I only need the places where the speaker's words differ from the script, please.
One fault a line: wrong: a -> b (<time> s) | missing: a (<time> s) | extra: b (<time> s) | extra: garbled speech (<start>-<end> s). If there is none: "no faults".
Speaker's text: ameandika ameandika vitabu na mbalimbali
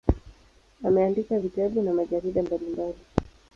missing: ameandika (1.4 s)
extra: majarida (1.9 s)